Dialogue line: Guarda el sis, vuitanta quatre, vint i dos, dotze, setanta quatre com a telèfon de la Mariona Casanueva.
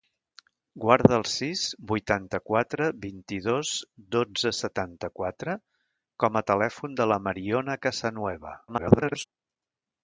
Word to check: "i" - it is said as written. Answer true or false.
true